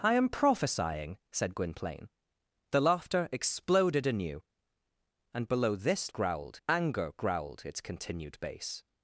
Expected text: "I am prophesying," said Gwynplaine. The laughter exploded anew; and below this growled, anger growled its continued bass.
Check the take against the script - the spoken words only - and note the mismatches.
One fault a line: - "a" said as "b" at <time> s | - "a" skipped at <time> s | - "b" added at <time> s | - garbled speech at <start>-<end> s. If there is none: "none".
none